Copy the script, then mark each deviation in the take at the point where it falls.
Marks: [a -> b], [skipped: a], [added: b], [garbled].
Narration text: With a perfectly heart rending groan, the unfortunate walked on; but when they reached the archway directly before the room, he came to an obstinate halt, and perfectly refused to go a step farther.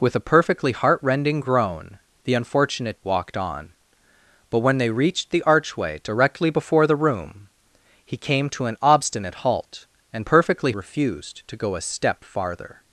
With a perfectly heart rending groan, the unfortunate walked on; but when they reached the archway directly before the room, he came to an obstinate halt, and perfectly refused to go a step farther.